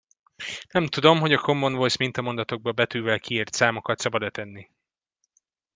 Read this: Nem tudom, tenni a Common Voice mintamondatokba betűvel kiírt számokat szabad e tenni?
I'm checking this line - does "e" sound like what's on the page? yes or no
yes